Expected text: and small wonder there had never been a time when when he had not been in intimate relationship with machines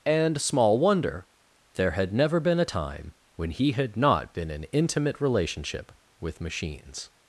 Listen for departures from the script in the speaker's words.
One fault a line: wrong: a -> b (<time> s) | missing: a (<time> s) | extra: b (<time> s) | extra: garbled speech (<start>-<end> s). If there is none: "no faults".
missing: when (3.5 s)